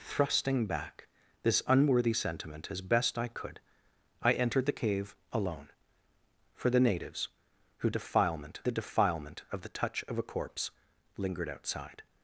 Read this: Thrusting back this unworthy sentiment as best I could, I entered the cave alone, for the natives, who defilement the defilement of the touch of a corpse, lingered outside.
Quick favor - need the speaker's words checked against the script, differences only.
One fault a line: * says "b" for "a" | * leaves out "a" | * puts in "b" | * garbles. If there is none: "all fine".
all fine